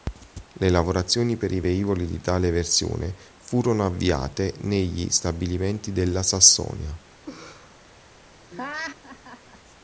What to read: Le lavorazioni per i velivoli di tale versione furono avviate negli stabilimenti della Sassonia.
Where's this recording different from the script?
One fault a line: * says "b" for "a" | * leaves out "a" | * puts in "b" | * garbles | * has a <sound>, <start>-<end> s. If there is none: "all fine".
* has a laugh, 7.3-7.8 s
* has a laugh, 8.5-9.6 s